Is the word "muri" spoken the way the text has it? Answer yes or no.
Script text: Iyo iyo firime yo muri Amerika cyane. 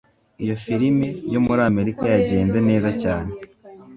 yes